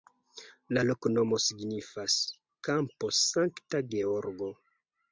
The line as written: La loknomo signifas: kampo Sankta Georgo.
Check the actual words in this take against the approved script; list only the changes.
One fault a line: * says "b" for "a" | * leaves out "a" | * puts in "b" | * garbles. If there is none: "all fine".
all fine